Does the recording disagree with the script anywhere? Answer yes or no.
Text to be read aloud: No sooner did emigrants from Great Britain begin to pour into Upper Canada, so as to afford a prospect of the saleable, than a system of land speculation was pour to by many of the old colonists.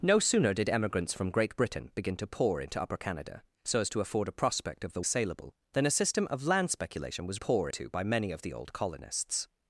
no